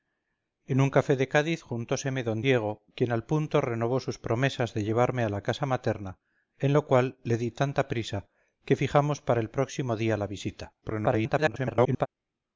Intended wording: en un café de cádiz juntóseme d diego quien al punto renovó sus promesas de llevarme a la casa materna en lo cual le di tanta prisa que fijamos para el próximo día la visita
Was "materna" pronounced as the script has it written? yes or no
yes